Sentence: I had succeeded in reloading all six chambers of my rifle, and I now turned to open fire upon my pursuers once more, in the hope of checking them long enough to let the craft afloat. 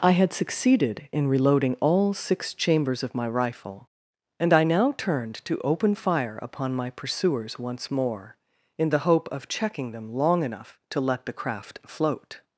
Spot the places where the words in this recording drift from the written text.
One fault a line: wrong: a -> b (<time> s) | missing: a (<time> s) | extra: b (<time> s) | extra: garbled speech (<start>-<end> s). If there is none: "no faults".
wrong: afloat -> float (11.8 s)